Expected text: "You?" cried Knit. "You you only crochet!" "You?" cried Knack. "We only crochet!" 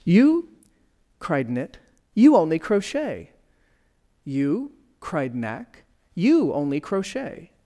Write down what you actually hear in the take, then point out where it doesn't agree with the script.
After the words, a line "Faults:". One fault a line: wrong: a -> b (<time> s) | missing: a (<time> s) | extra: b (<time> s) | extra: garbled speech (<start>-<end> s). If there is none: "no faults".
"You?" cried Knit. "You only crochet!" "You?" cried Knack. "You only crochet!"
Faults:
missing: you (2.4 s)
wrong: We -> You (6.2 s)